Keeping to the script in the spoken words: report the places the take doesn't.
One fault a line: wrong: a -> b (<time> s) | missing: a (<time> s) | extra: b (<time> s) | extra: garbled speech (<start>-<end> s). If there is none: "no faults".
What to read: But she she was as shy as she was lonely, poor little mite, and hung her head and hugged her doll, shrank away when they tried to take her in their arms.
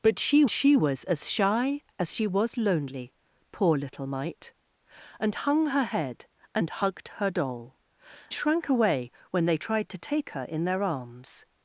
no faults